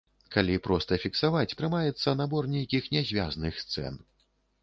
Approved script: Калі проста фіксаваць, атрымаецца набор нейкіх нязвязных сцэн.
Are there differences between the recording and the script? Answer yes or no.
no